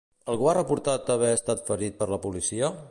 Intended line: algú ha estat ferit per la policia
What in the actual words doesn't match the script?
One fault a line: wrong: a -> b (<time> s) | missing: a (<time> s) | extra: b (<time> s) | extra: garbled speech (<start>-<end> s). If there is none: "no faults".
extra: reportat haver (0.6 s)